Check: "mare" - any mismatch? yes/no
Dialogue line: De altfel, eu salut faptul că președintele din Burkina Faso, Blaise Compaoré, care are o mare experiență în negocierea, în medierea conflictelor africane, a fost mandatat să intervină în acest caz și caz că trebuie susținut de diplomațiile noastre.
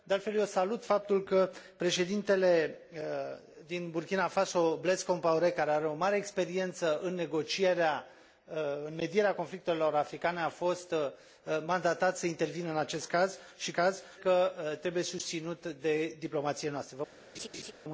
no